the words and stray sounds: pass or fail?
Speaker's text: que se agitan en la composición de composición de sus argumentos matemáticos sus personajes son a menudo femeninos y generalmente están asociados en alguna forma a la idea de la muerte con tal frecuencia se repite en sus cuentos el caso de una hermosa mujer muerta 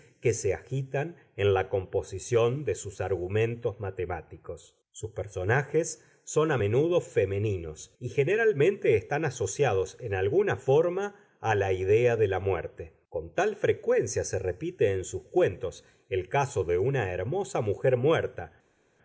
fail